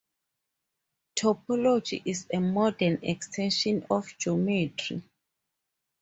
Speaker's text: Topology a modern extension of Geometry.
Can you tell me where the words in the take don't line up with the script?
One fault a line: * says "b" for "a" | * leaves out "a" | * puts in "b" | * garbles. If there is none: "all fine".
* puts in "is"